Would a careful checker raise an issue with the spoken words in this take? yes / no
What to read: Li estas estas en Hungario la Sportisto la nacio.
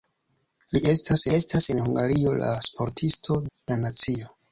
no